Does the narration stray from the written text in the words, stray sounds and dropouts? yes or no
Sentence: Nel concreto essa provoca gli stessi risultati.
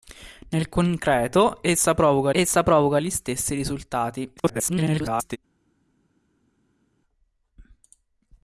yes